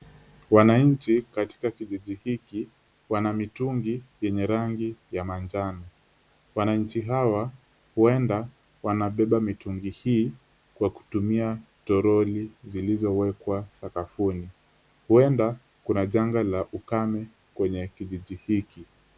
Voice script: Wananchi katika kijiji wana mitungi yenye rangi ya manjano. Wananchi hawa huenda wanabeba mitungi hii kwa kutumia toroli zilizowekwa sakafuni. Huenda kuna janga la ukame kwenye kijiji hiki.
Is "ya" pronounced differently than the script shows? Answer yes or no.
no